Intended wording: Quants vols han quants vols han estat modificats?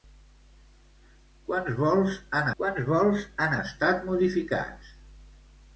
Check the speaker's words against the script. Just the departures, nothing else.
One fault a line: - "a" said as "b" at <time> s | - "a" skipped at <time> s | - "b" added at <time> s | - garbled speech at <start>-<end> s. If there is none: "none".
none